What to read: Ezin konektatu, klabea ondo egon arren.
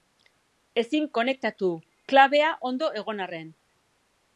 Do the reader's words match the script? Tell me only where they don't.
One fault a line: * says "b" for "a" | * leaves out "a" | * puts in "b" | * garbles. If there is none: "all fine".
all fine